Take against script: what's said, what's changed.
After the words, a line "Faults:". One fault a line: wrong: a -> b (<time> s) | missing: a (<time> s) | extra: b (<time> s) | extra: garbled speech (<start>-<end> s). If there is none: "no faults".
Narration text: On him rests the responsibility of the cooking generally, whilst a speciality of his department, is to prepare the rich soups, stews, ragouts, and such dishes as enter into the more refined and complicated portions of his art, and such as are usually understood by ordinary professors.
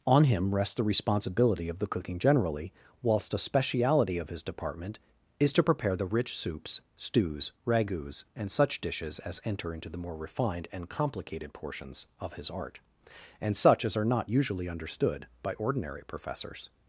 On him rests the responsibility of the cooking generally, whilst a speciality of his department, is to prepare the rich soups, stews, ragouts, and such dishes as enter into the more refined and complicated portions of his art, and such as are not usually understood by ordinary professors.
Faults:
extra: not (14.1 s)